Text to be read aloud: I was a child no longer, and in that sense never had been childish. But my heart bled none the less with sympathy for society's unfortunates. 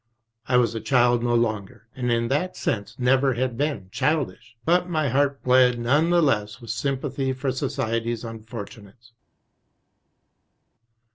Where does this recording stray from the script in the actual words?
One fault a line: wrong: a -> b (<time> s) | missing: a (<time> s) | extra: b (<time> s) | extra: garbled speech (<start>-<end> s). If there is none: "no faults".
no faults